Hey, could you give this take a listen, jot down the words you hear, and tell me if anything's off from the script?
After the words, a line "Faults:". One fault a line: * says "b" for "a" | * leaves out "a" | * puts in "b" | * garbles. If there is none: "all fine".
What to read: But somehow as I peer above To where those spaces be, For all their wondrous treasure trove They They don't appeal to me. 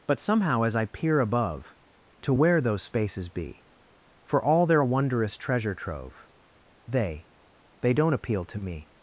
But somehow as I peer above To where those spaces be, For all their wondrous treasure trove They They don't appeal to me.
Faults:
all fine